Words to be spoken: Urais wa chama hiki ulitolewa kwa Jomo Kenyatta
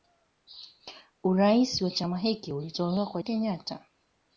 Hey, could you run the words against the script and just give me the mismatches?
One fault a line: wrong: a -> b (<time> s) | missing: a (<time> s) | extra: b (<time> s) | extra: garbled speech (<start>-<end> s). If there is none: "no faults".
missing: Jomo (3.2 s)